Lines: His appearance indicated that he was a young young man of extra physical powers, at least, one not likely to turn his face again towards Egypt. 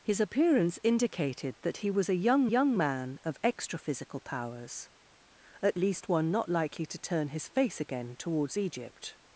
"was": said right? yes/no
yes